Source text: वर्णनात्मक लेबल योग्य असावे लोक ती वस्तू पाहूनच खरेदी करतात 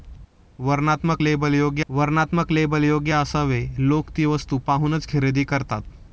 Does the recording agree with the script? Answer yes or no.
no